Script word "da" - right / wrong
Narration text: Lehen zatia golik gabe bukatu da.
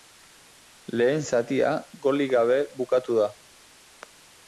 right